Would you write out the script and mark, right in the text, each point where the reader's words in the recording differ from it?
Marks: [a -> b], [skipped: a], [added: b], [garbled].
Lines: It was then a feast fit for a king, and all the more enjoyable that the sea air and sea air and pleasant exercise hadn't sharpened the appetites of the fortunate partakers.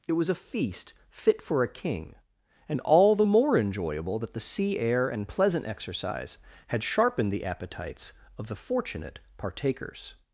It was [skipped: then] a feast fit for a king, and all the more enjoyable that the sea air and [skipped: sea air and] pleasant exercise [hadn't -> had] sharpened the appetites of the fortunate partakers.